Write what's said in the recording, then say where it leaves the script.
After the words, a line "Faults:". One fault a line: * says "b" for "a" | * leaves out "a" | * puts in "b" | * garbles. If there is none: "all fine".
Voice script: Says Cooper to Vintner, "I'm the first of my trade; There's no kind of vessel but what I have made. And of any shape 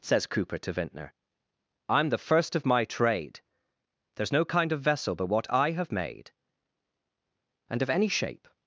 Says Cooper to Vintner, "I'm the first of my trade; There's no kind of vessel but what I have made. And of any shape
Faults:
all fine